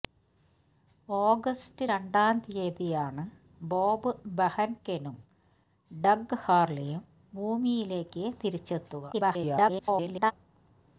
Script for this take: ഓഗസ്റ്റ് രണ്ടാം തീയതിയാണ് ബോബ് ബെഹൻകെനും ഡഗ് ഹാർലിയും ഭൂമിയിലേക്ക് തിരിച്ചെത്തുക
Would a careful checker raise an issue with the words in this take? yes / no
yes